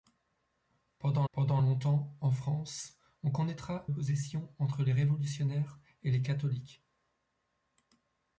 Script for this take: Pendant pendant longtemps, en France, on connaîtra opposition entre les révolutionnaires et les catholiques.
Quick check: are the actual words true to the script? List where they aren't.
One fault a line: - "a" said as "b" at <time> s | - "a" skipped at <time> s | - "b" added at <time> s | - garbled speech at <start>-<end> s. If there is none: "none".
none